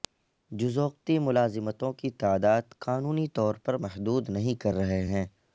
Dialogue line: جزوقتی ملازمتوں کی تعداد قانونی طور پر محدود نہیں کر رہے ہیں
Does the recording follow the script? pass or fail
pass